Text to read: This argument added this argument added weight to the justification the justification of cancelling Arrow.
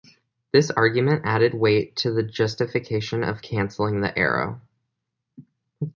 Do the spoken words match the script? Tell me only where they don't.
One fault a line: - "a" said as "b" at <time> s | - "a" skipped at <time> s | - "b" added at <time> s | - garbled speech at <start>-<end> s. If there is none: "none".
- "this argument added" skipped at 1.5 s
- "the justification" skipped at 3.2 s
- "the" added at 4.0 s